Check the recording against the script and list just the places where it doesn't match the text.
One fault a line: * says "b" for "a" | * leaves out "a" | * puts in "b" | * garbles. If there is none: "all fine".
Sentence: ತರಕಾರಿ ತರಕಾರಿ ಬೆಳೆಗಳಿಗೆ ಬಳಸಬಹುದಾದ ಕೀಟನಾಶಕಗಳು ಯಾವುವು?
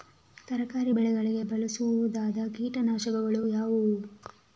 * leaves out "ತರಕಾರಿ"